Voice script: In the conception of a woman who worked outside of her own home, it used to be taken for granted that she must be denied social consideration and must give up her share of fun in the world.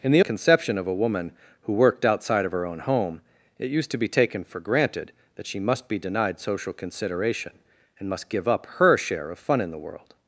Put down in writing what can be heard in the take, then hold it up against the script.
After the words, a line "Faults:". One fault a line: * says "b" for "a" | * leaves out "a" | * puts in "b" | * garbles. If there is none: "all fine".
In the conception of a woman who worked outside of her own home, it used to be taken for granted that she must be denied social consideration and must give up her share of fun in the world.
Faults:
all fine